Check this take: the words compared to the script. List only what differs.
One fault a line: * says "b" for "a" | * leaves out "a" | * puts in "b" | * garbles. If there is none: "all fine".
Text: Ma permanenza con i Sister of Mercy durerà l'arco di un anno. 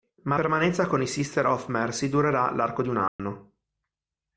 all fine